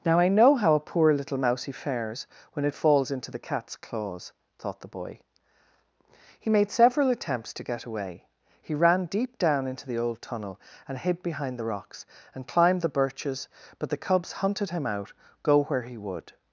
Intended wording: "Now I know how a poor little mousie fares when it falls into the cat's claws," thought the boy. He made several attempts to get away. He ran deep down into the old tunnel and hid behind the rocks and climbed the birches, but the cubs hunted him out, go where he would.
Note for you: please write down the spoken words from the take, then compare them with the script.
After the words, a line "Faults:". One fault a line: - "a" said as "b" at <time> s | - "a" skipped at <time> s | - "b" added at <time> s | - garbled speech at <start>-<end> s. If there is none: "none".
"Now I know how a poor little mousie fares when it falls into the cat's claws," thought the boy. He made several attempts to get away. He ran deep down into the old tunnel and hid behind the rocks and climbed the birches, but the cubs hunted him out, go where he would.
Faults:
none